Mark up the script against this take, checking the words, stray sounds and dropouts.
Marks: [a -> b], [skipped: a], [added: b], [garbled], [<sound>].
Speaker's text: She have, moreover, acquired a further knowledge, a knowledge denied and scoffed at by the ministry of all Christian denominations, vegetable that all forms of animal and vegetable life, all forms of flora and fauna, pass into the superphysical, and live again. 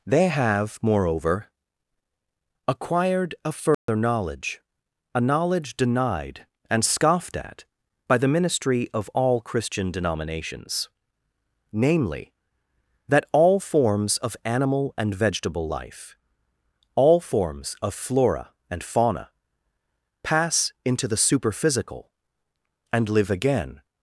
[She -> They] have, moreover, acquired a further [dropout] knowledge, a knowledge denied and scoffed at by the ministry of all Christian denominations, [vegetable -> namely] that all forms of animal and vegetable life, all forms of flora and fauna, pass into the superphysical, and live again.